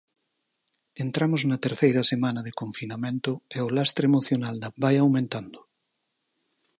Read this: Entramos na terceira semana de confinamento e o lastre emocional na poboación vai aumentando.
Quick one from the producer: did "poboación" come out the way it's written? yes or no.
no